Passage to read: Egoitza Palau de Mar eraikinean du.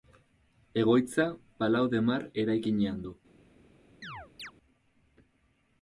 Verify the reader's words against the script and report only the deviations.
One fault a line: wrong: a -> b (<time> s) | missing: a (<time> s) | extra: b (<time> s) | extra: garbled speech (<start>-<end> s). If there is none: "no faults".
no faults